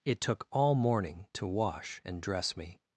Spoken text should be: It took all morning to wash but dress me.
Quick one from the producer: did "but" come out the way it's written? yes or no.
no